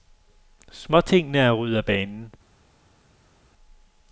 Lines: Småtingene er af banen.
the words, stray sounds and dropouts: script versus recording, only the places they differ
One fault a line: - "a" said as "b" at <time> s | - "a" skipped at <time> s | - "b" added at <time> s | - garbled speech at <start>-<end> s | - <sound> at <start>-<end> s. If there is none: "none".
- "ryddet" added at 1.5 s